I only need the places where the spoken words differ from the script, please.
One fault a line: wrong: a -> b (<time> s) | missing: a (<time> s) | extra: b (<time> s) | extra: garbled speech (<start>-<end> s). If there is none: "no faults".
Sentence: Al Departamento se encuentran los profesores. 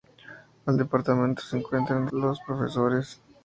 no faults